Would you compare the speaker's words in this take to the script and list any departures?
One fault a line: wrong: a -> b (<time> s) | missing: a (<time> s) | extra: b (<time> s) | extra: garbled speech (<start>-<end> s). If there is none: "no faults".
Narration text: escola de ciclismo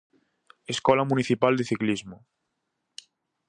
extra: municipal (1.0 s)